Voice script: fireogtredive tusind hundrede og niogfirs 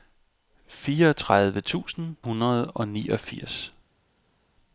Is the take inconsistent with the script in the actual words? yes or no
no